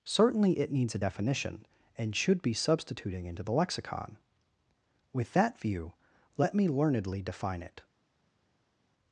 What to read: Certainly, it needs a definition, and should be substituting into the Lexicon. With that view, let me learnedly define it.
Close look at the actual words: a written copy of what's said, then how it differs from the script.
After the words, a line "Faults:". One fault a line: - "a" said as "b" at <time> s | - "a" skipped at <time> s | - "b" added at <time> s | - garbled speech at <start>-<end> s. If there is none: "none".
Certainly, it needs a definition, and should be substituting into the Lexicon. With that view, let me learnedly define it.
Faults:
none